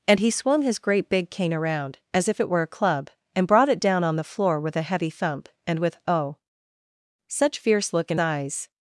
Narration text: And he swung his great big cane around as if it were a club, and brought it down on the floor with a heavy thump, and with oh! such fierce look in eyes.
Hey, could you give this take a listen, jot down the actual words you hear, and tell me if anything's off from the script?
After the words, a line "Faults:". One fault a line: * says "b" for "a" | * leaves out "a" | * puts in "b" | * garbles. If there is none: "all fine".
And he swung his great big cane around as if it were a club, and brought it down on the floor with a heavy thump, and with oh! such fierce look in eyes.
Faults:
all fine